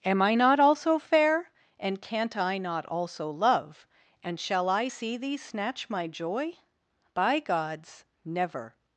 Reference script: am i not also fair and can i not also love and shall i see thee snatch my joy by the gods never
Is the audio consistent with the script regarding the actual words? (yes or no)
no